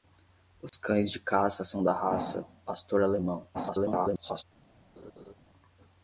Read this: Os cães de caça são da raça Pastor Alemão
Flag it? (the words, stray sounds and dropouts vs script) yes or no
yes